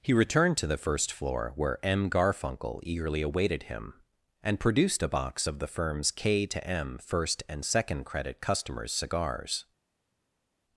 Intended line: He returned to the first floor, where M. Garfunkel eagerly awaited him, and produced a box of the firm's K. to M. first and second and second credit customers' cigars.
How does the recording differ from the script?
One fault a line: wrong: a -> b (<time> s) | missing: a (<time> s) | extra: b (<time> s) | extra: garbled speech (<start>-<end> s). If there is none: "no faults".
missing: and second (8.0 s)